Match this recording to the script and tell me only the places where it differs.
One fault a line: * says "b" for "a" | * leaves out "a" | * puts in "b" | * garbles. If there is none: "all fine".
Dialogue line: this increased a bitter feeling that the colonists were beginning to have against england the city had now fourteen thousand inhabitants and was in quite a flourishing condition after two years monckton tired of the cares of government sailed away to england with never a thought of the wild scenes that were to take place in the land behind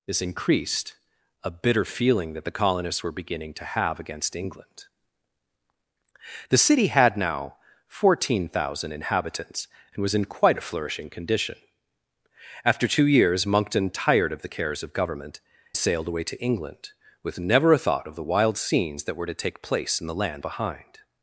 all fine